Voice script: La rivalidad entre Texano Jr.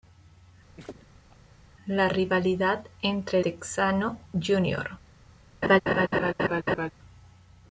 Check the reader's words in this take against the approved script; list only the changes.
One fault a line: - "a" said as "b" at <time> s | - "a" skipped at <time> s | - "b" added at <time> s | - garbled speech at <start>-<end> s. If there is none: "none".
none